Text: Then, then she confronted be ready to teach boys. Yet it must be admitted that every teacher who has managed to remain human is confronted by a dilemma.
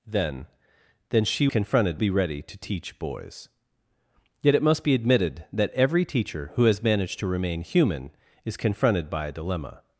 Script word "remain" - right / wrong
right